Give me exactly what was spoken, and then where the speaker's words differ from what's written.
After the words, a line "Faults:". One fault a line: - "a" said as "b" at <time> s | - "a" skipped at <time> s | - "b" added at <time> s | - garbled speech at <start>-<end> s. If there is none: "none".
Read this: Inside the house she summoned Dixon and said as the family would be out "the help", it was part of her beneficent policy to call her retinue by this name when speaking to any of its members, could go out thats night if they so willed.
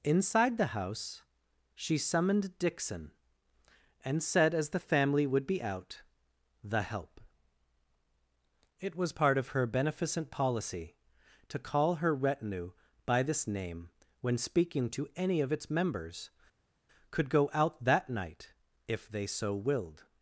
Inside the house she summoned Dixon and said as the family would be out "the help", it was part of her beneficent policy to call her retinue by this name when speaking to any of its members, could go out that night if they so willed.
Faults:
- "thats" said as "that" at 17.8 s